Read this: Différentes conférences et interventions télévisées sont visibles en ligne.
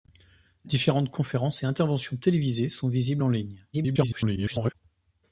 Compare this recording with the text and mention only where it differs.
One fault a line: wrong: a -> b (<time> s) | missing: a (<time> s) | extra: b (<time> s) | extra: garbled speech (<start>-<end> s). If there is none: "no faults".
extra: garbled speech (3.7-4.7 s)